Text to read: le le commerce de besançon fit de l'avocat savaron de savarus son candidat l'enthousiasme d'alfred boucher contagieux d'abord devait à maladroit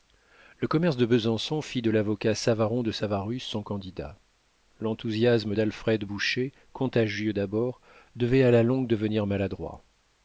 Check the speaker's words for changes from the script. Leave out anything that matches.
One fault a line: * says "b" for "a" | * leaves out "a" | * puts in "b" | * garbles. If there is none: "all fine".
* leaves out "le"
* puts in "la longue devenir"